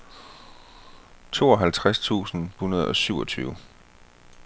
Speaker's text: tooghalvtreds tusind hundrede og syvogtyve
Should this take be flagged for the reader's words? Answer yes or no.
no